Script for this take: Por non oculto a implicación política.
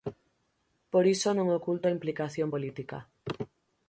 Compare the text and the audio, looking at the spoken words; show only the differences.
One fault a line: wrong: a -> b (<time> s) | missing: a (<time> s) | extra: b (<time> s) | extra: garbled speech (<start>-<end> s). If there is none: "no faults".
extra: iso (1.1 s)